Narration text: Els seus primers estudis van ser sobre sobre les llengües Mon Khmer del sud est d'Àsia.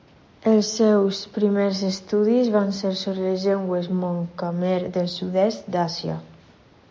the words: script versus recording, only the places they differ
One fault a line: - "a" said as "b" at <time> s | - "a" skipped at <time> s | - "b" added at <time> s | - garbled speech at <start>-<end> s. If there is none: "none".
- "sobre" skipped at 3.3 s